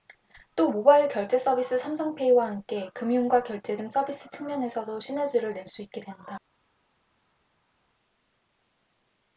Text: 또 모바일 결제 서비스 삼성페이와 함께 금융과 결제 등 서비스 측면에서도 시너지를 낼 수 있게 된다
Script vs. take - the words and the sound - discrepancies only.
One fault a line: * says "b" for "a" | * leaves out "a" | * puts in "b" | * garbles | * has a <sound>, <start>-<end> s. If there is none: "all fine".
all fine